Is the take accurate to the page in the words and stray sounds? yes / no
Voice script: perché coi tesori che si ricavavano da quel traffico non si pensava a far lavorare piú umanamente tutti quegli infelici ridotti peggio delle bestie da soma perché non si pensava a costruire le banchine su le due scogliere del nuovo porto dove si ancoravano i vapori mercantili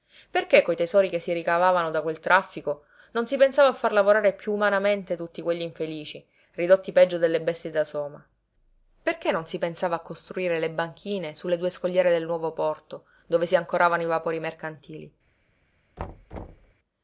no